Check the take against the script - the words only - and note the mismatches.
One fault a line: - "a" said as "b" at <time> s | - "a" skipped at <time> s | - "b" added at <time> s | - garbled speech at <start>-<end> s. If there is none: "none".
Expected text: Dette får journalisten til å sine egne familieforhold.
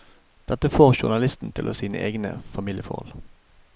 none